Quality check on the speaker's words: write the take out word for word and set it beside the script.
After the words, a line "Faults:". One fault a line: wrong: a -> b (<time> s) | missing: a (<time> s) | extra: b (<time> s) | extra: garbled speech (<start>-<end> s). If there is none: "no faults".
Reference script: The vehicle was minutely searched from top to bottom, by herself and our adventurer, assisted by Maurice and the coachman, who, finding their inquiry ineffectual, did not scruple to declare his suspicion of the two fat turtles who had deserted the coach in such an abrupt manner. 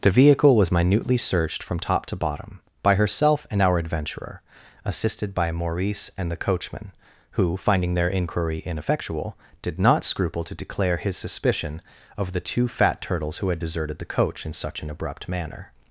The vehicle was minutely searched from top to bottom, by herself and our adventurer, assisted by Maurice and the coachman, who, finding their inquiry ineffectual, did not scruple to declare his suspicion of the two fat turtles who had deserted the coach in such an abrupt manner.
Faults:
no faults